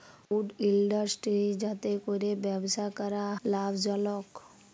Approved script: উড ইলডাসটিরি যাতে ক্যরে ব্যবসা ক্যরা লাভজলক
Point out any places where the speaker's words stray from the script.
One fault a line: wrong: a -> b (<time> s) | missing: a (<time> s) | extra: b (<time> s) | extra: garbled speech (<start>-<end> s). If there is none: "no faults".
no faults